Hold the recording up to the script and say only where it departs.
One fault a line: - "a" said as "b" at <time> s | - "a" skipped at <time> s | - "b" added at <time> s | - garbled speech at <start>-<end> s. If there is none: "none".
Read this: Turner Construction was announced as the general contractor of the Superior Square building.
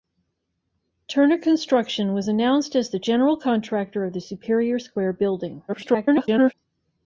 - garbled speech at 5.7-6.5 s